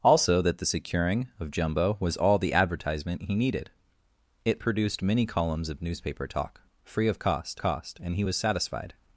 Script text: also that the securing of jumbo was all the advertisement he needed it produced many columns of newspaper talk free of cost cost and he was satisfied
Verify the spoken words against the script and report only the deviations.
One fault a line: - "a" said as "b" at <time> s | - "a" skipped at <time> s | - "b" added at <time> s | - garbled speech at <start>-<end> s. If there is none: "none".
none